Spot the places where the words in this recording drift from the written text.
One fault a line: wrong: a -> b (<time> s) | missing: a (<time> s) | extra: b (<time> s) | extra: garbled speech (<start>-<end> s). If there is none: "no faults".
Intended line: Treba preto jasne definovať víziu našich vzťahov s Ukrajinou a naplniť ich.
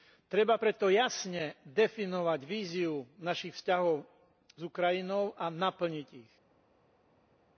no faults